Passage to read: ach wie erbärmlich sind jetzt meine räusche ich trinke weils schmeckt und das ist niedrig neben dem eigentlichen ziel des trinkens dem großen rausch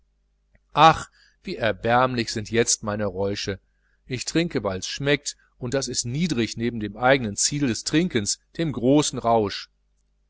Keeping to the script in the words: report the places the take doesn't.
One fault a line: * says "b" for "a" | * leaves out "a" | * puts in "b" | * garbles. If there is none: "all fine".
all fine